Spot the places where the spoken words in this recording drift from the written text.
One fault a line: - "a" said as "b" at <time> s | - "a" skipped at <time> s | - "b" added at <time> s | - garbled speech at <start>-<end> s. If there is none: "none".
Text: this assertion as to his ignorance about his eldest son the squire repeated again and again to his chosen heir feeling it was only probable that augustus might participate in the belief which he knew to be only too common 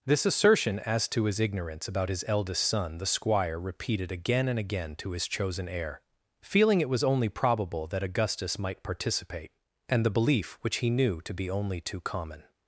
- "in" said as "and" at 9.9 s